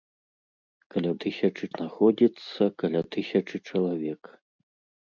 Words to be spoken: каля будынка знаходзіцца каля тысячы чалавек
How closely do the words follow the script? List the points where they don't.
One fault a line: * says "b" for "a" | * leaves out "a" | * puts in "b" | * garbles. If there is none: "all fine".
* says "тысячы" for "будынка"